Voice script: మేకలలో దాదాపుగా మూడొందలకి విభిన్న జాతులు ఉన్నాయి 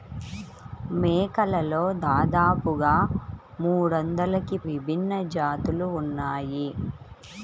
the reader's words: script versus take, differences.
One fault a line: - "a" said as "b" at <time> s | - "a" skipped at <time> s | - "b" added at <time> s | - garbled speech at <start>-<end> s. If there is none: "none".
none